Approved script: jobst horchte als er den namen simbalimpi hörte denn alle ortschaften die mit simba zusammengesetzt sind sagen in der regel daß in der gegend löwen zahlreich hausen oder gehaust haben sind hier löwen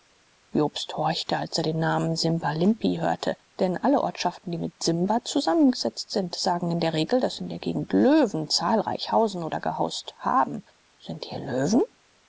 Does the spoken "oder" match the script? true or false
true